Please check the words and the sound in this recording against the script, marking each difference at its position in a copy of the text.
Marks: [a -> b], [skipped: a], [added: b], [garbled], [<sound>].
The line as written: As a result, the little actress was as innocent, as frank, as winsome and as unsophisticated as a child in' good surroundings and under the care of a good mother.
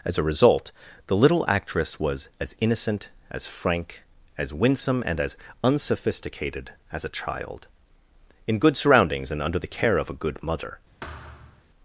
As a result, the little actress was as innocent, as frank, as winsome and as unsophisticated as a child in' good surroundings and under the care of a good mother. [thud]